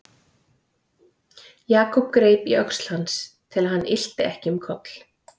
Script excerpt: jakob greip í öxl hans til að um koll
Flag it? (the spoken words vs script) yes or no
yes